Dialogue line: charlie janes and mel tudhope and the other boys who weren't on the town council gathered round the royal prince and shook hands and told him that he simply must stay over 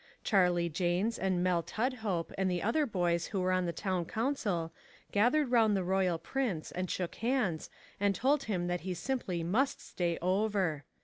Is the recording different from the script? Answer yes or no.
yes